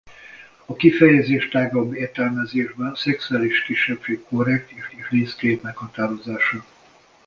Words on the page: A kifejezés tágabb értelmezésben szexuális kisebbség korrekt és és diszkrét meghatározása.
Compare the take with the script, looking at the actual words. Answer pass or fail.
pass